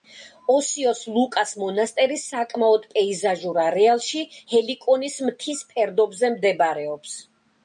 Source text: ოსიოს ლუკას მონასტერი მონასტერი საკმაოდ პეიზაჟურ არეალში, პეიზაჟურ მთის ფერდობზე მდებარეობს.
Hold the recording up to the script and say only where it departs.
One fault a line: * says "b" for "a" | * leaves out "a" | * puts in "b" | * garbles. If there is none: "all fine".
* leaves out "მონასტერი"
* says "ჰელიკონის" for "პეიზაჟურ"